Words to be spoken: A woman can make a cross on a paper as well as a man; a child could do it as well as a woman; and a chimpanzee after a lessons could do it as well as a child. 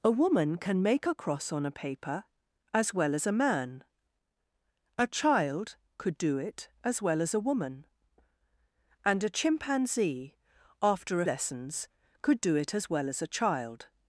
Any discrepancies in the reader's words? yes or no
no